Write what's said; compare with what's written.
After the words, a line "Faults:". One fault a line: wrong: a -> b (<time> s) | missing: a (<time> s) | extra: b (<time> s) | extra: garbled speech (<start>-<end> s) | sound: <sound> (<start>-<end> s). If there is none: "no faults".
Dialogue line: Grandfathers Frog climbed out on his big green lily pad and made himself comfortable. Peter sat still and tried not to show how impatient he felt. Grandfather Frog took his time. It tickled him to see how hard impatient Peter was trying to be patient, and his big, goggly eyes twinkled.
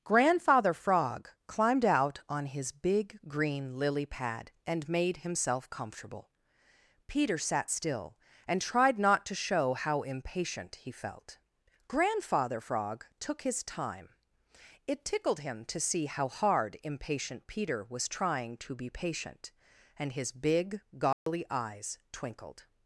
Grandfather Frog climbed out on his big green lily pad and made himself comfortable. Peter sat still and tried not to show how impatient he felt. Grandfather Frog took his time. It tickled him to see how hard impatient Peter was trying to be patient, and his big, goggly eyes twinkled.
Faults:
wrong: Grandfathers -> Grandfather (0.0 s)
sound: dropout (21.1-21.3 s)